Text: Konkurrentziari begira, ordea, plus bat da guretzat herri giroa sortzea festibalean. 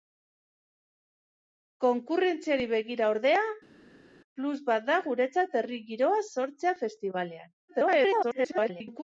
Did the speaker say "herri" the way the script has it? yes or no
yes